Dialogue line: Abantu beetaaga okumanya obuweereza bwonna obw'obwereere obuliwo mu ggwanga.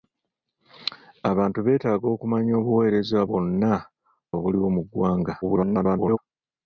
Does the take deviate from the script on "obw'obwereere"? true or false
true